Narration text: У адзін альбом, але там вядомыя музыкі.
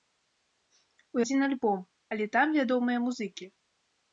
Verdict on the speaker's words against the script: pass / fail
pass